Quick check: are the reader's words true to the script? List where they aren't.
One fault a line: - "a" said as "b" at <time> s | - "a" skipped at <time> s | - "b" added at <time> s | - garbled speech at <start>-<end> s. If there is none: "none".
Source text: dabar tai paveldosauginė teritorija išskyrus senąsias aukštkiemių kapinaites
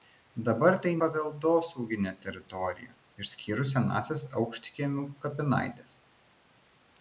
none